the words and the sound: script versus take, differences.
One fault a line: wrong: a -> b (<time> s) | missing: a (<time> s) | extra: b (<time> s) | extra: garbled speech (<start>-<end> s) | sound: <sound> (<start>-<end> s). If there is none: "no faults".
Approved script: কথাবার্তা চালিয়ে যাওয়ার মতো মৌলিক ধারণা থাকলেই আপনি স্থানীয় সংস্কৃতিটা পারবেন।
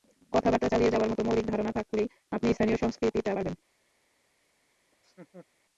sound: laugh (4.9-5.5 s)